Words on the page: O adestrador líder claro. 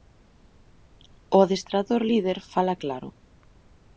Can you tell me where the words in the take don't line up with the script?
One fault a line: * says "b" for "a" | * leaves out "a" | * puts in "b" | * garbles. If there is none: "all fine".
* puts in "fala"